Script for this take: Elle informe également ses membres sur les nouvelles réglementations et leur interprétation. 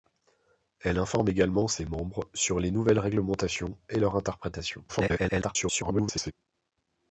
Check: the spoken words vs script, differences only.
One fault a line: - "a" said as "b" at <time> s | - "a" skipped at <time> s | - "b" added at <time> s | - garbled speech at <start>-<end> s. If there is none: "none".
- garbled speech at 4.9-6.3 s